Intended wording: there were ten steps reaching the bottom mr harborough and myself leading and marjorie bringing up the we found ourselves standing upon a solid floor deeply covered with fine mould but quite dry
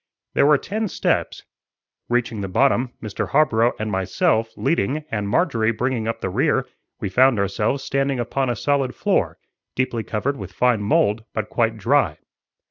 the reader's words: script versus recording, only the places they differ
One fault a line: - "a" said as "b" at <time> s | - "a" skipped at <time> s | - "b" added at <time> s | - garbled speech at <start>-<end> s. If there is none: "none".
- "rear" added at 6.3 s